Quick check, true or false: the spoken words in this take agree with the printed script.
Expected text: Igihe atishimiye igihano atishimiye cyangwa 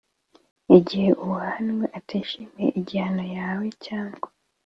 false